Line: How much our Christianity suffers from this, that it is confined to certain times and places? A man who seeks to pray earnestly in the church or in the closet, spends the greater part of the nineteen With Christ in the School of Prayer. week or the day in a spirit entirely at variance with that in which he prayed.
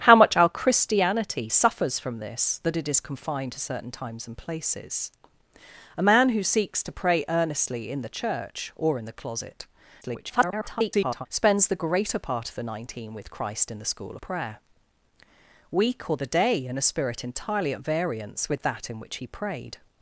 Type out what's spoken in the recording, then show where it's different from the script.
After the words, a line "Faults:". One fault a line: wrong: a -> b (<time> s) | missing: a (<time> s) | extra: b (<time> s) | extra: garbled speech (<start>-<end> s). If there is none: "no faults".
How much our Christianity suffers from this, that it is confined to certain times and places? A man who seeks to pray earnestly in the church or in the closet, [garbled] spends the greater part of the nineteen With Christ in the School Prayer. week or the day in a spirit entirely at variance with that in which he prayed.
Faults:
extra: garbled speech (10.0-11.3 s)
missing: of (14.2 s)